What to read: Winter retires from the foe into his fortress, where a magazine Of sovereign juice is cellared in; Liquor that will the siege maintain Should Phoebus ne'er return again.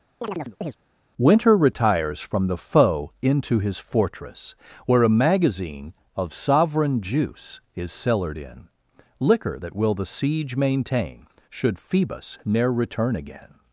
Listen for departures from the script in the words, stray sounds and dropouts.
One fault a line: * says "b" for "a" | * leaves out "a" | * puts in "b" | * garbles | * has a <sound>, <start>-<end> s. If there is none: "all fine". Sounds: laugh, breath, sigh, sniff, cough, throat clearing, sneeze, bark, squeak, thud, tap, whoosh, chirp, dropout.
* has a chirp, 0.2-0.8 s